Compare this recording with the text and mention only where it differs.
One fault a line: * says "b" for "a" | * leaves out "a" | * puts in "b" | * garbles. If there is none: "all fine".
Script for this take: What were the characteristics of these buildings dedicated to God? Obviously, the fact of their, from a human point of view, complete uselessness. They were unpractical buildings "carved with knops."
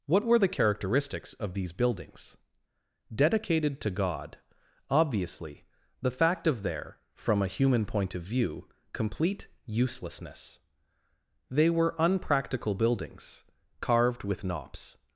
all fine